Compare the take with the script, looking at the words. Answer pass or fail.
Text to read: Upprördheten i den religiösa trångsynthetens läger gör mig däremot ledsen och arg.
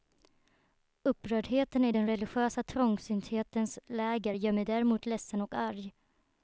pass